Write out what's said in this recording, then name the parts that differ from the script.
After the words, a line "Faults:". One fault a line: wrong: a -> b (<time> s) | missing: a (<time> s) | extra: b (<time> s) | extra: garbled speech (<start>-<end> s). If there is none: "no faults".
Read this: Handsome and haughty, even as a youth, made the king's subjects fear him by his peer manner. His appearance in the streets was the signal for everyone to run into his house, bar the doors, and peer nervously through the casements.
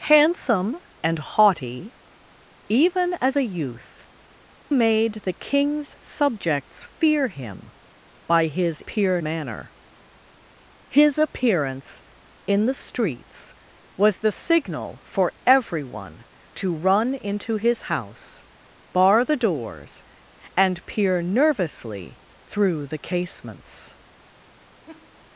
Handsome and haughty, even as a youth, made the king's subjects fear him by his peer manner. His appearance in the streets was the signal for everyone to run into his house, bar the doors, and peer nervously through the casements.
Faults:
no faults